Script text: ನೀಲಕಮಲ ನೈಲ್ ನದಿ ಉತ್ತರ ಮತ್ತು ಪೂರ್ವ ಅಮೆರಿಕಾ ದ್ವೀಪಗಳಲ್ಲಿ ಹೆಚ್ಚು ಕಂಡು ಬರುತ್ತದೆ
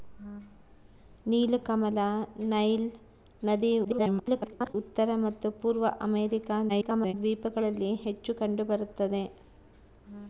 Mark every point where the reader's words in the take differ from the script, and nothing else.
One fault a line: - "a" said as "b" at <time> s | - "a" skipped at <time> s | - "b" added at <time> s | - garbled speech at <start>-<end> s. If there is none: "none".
- garbled speech at 3.8-4.7 s
- garbled speech at 6.7-7.1 s